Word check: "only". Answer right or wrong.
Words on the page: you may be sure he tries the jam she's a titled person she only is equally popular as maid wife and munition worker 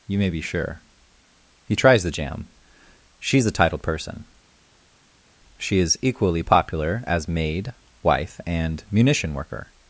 wrong